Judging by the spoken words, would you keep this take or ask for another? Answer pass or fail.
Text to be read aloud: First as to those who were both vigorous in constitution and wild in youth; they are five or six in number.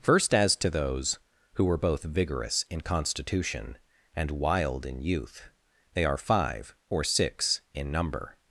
pass